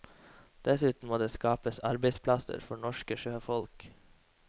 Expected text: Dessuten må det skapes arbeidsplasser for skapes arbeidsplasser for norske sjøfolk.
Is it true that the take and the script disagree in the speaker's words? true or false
true